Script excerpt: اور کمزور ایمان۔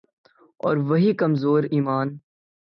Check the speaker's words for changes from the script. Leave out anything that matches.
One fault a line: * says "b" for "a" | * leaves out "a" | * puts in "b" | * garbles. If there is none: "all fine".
* puts in "وہی"